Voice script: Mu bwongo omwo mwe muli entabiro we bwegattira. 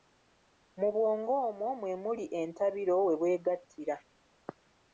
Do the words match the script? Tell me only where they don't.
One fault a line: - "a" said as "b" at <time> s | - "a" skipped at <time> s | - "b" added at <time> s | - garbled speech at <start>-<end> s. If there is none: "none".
none